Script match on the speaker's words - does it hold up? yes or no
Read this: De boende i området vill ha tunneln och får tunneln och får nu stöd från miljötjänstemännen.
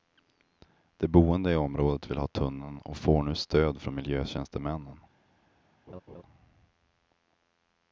no